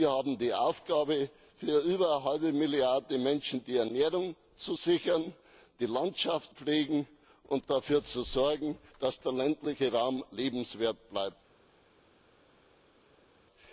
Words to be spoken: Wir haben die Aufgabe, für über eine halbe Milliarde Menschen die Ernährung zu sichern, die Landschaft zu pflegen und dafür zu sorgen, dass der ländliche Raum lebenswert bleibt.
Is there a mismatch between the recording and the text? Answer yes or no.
yes